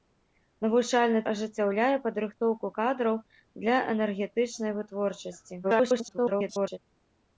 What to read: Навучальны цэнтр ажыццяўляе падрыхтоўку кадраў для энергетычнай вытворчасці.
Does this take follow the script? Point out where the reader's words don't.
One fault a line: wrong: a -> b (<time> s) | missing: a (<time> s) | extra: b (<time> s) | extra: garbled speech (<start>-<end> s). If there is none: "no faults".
missing: цэнтр (1.2 s)
extra: garbled speech (5.6-6.8 s)